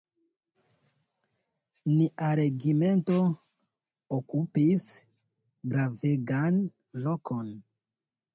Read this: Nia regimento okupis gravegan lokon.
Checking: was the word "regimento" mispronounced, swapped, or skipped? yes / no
no